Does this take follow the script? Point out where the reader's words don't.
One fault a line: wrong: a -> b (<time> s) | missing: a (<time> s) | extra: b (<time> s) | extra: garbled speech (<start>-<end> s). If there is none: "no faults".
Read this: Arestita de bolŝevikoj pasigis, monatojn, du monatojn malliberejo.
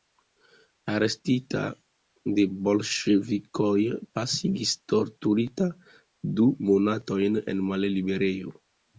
wrong: monatojn -> torturita (4.9 s)
extra: en (7.6 s)